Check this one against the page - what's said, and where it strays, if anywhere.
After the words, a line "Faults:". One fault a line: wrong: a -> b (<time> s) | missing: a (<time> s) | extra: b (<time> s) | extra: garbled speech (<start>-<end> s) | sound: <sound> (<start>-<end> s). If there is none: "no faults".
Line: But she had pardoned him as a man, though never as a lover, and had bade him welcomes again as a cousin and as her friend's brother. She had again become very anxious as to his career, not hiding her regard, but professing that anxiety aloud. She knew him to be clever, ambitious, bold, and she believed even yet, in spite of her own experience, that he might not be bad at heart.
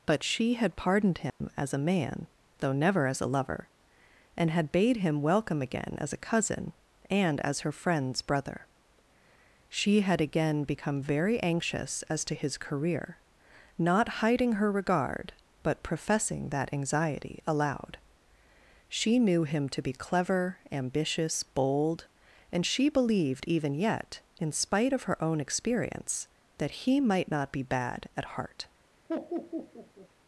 But she had pardoned him as a man, though never as a lover, and had bade him welcome again as a cousin and as her friend's brother. She had again become very anxious as to his career, not hiding her regard, but professing that anxiety aloud. She knew him to be clever, ambitious, bold, and she believed even yet, in spite of her own experience, that he might not be bad at heart.
Faults:
sound: dropout (1.3-1.4 s)
wrong: welcomes -> welcome (5.2 s)
sound: laugh (29.1-30.1 s)